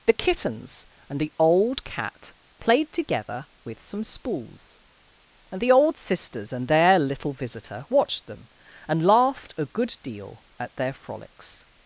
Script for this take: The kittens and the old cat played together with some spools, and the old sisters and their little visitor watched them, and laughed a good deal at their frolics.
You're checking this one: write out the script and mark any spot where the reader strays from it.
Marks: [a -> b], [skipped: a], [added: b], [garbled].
The kittens and the old cat played together with some spools, and the old sisters and their little visitor watched them, and laughed a good deal at their frolics.